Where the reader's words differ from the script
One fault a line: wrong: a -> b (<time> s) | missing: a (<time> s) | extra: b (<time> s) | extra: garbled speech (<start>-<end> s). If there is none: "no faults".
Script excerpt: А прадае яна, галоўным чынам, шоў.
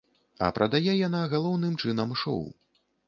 no faults